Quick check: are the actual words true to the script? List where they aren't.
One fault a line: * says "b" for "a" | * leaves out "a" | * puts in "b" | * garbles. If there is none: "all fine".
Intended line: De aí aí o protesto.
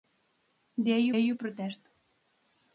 all fine